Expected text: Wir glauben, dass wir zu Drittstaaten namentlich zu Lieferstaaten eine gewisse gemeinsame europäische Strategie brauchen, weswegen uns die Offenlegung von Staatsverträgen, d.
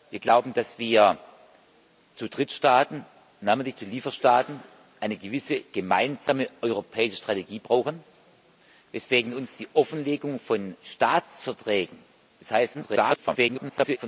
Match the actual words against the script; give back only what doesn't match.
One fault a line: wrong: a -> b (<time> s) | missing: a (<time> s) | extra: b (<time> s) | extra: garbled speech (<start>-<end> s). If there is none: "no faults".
extra: garbled speech (12.7-14.0 s)